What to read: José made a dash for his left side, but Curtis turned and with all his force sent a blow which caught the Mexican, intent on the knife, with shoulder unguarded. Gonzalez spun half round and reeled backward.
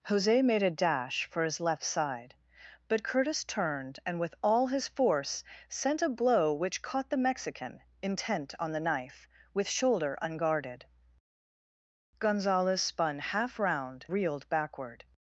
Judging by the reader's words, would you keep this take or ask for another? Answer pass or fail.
fail